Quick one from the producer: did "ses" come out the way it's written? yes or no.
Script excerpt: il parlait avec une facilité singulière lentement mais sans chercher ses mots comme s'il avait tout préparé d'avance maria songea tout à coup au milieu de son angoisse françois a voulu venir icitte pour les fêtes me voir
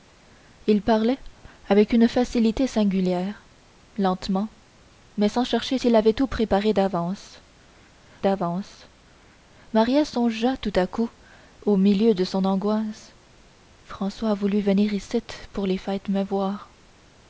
no